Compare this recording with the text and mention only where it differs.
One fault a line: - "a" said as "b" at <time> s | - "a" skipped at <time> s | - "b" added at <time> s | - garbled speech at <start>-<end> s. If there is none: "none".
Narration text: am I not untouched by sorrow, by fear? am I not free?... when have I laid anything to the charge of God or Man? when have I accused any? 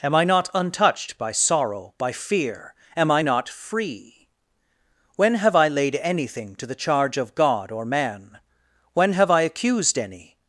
none